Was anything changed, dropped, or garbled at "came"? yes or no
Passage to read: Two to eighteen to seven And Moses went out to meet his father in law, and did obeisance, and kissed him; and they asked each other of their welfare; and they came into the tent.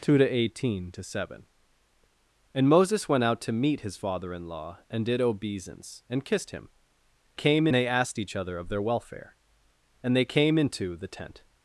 no